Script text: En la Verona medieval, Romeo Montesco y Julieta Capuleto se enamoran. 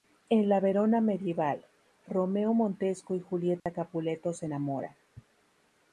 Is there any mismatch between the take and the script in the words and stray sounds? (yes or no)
yes